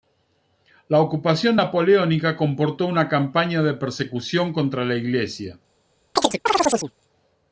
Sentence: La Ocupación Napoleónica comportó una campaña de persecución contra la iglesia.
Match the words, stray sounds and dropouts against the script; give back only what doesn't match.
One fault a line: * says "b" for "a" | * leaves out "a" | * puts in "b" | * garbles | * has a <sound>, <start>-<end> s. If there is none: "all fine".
* has a chirp, 6.2-6.9 s